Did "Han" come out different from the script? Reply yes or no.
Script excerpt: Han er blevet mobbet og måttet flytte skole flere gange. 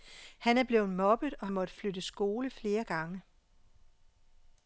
no